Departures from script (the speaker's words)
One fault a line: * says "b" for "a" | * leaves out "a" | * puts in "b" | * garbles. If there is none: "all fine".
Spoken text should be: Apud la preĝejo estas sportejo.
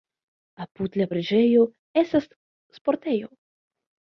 all fine